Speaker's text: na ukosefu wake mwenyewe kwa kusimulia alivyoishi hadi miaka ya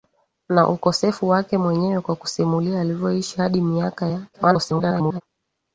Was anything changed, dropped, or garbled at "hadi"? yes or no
no